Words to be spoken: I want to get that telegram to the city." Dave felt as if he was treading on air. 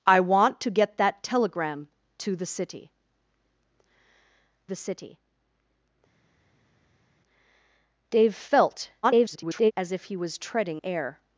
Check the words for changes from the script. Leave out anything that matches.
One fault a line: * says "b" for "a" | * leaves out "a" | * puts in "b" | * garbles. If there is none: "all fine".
* puts in "the city"
* garbles
* leaves out "on"